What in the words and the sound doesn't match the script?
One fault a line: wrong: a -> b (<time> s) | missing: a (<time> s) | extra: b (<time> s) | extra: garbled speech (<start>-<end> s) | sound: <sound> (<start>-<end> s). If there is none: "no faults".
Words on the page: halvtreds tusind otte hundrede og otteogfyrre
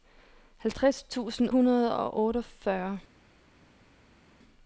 missing: otte (1.5 s)